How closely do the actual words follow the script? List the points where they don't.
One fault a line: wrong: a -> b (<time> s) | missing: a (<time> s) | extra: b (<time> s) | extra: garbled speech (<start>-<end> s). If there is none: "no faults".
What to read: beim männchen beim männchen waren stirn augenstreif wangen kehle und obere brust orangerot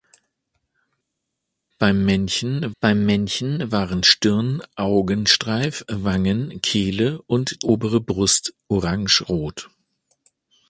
no faults